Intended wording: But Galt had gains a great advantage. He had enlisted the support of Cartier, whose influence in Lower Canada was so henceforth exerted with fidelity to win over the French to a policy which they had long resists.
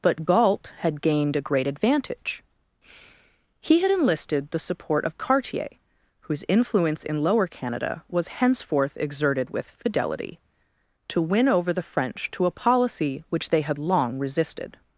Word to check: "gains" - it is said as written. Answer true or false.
false